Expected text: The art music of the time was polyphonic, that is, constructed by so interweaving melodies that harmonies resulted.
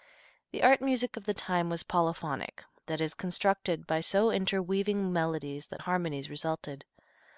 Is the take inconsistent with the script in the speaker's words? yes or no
no